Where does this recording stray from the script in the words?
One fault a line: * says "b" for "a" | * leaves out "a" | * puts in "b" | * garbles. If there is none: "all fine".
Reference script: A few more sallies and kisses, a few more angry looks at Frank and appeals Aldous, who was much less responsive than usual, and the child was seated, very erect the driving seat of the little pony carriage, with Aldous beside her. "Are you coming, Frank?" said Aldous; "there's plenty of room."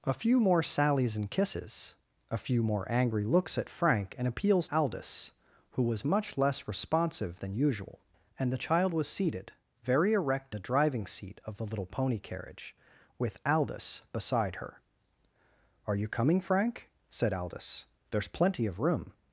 all fine